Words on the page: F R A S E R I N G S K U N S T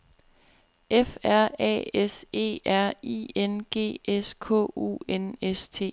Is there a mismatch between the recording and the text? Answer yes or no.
no